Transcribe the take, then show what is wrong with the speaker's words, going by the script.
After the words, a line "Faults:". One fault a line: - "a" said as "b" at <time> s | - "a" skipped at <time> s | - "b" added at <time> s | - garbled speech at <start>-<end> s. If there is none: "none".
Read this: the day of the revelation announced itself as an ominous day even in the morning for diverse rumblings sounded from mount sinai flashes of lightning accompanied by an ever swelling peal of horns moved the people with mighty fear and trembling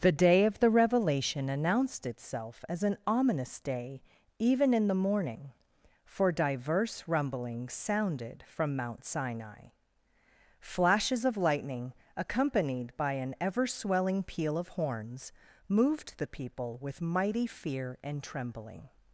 the day of the revelation announced itself as an ominous day even in the morning for diverse rumblings sounded from mount sinai flashes of lightning accompanied by an ever swelling peal of horns moved the people with mighty fear and trembling
Faults:
none